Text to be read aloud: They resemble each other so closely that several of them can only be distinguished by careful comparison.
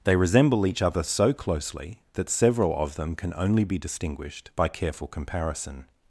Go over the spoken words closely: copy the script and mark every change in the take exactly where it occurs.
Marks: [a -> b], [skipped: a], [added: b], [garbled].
They resemble each other so closely that several of them can only be distinguished by careful comparison.